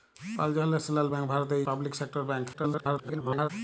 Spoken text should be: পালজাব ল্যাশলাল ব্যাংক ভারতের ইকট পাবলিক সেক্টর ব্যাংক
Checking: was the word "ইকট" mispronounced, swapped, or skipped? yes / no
yes